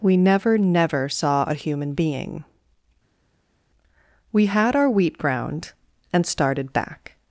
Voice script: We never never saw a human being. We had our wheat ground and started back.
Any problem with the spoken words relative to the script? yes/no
no